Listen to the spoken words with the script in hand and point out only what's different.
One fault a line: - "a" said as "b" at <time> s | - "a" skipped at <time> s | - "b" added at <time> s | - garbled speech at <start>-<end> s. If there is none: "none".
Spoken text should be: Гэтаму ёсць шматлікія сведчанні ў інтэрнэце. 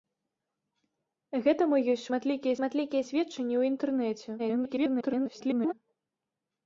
- "шматлікія" added at 2.6 s
- garbled speech at 4.4-5.7 s